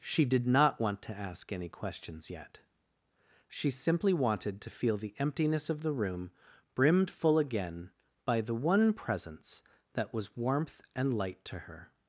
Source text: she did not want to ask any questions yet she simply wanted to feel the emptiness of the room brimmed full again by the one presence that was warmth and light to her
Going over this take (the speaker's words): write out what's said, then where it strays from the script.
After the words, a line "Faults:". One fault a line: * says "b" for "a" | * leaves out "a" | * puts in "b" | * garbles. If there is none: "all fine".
she did not want to ask any questions yet she simply wanted to feel the emptiness of the room brimmed full again by the one presence that was warmth and light to her
Faults:
all fine